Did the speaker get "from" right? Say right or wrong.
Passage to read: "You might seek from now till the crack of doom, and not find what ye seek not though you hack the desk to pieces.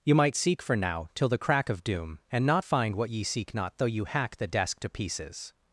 wrong